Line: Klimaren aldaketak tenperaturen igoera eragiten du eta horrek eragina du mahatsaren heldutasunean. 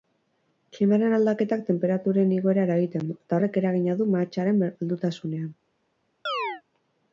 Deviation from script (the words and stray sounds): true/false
true